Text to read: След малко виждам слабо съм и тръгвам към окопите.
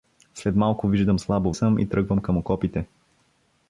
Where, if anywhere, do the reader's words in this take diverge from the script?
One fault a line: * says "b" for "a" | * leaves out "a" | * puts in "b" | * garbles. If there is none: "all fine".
all fine